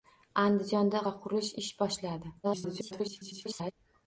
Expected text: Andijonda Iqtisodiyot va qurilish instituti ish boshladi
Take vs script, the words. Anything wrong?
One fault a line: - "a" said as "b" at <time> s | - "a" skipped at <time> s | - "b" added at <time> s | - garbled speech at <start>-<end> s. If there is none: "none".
- "Iqtisodiyot" skipped at 1.0 s
- "instituti" skipped at 1.5 s
- garbled speech at 2.4-3.7 s